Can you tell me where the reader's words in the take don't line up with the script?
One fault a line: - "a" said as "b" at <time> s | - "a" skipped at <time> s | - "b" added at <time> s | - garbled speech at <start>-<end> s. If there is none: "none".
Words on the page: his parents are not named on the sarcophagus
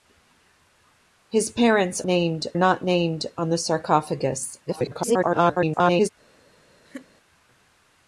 - "are" said as "named" at 2.1 s
- garbled speech at 4.7-6.1 s